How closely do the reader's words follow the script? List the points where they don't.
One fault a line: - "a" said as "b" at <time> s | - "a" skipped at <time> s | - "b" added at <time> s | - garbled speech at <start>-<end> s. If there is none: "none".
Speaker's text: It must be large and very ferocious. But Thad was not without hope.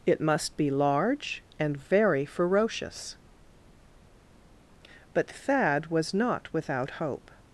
none